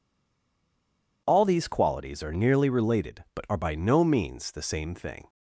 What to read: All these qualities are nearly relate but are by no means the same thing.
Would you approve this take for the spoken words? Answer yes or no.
no